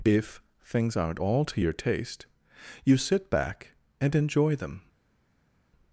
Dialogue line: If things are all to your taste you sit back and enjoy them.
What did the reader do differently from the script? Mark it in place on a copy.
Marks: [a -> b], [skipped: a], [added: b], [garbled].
If things [are -> aren't] all to your taste you sit back and enjoy them.